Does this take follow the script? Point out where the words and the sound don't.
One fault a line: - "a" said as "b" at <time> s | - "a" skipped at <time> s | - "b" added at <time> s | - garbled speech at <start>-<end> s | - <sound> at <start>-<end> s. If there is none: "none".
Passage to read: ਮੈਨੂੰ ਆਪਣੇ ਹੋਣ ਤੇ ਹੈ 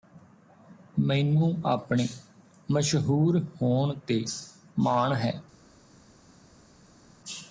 - "ਮਸ਼ਹੂਰ" added at 2.7 s
- "ਮਾਣ" added at 4.8 s